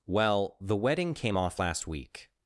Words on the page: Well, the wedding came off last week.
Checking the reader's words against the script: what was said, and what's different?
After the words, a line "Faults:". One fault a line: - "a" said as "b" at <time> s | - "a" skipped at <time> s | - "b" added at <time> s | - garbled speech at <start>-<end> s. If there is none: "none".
Well, the wedding came off last week.
Faults:
none